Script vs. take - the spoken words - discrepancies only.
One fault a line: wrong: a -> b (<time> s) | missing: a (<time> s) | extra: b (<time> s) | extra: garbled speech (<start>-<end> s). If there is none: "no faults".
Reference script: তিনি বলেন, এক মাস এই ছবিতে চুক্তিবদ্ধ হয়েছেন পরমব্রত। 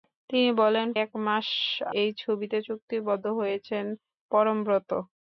no faults